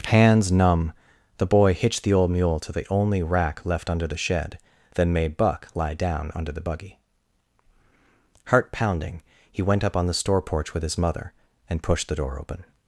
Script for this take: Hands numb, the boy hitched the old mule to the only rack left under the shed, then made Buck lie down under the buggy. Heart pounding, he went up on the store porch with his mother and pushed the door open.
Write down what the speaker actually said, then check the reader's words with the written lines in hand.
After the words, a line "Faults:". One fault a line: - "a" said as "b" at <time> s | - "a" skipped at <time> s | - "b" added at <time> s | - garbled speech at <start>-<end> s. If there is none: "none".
Hands numb, the boy hitched the old mule to the only rack left under the shed, then made Buck lie down under the buggy. Heart pounding, he went up on the store porch with his mother and pushed the door open.
Faults:
none